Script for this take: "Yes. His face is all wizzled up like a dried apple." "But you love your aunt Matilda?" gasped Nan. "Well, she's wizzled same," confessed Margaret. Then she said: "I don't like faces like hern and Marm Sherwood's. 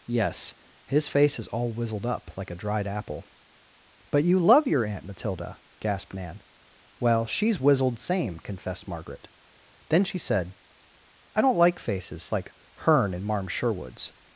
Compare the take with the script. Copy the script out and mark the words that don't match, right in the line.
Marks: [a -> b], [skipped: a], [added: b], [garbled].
"Yes. His face is all wizzled up like a dried apple." "But you love your aunt Matilda?" gasped Nan. "Well, she's wizzled same," confessed Margaret. Then she said: "I don't like faces like hern and Marm Sherwood's.